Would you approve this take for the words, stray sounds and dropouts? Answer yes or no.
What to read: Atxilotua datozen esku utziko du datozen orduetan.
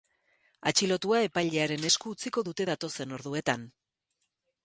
no